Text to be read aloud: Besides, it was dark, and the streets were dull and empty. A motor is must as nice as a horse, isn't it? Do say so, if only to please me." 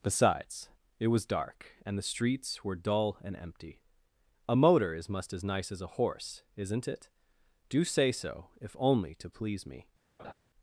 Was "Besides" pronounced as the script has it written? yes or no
yes